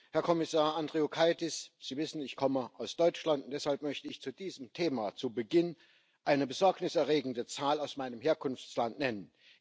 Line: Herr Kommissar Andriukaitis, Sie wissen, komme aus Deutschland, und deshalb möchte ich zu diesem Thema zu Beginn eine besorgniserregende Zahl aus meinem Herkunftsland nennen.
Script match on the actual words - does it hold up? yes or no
no